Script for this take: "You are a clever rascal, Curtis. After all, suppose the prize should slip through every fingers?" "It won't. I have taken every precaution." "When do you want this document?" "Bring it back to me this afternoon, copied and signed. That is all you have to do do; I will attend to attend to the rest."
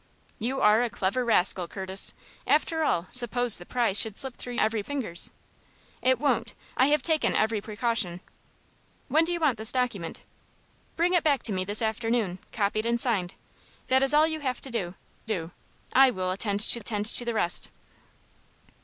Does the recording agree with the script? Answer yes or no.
yes